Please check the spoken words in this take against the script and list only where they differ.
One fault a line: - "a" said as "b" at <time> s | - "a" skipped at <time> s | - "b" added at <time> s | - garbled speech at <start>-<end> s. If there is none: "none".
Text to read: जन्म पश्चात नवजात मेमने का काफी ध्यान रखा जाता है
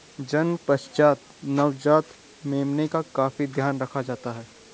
none